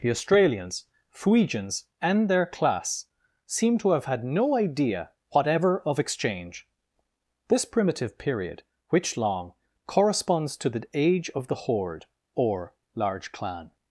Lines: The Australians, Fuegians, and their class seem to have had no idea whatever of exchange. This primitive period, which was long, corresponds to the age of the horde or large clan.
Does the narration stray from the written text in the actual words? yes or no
yes